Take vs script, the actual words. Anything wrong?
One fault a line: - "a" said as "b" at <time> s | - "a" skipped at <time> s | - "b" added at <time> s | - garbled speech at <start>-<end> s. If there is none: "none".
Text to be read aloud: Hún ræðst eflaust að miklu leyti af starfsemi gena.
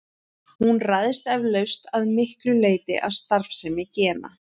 none